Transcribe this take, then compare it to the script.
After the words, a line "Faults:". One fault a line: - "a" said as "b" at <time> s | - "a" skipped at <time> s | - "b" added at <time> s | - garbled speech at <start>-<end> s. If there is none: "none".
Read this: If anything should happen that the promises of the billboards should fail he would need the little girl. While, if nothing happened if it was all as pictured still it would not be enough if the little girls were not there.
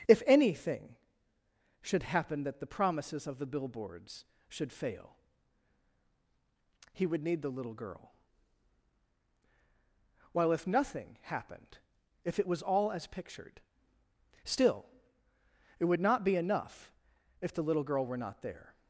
If anything should happen that the promises of the billboards should fail he would need the little girl. While, if nothing happened if it was all as pictured still it would not be enough if the little girl were not there.
Faults:
- "girls" said as "girl" at 17.8 s